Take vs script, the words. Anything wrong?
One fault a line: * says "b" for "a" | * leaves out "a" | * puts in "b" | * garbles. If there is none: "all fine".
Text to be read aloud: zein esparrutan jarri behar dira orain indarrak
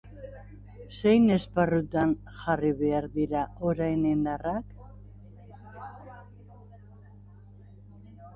all fine